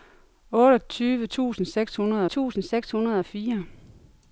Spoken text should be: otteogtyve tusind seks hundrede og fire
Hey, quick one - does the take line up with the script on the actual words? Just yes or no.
no